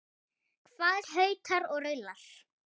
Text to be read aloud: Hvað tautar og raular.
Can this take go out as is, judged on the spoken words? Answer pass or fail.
pass